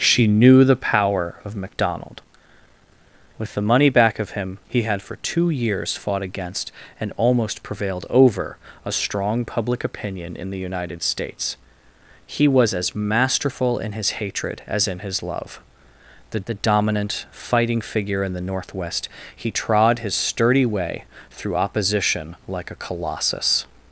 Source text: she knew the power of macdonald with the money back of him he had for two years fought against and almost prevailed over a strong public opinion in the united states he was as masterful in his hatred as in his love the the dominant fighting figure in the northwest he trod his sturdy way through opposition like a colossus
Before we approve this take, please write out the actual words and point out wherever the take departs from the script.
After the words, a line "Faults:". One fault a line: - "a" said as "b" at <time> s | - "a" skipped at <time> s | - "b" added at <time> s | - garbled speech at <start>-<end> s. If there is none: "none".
she knew the power of macdonald with the money back of him he had for two years fought against and almost prevailed over a strong public opinion in the united states he was as masterful in his hatred as in his love the the dominant fighting figure in the northwest he trod his sturdy way through opposition like a colossus
Faults:
none